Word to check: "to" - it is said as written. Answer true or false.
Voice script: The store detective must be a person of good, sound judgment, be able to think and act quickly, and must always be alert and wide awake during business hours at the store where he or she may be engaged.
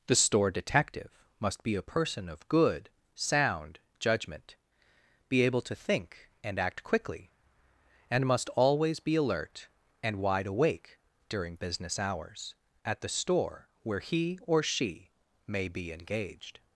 true